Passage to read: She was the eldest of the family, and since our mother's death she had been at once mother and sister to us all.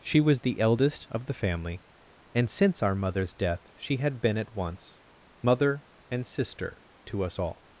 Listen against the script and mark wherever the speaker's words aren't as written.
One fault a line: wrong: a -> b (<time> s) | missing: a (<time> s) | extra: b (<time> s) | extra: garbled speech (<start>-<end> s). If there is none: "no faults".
no faults